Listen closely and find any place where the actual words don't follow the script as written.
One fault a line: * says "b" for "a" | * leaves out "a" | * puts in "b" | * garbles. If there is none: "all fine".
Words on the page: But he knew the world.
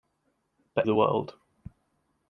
* leaves out "he knew"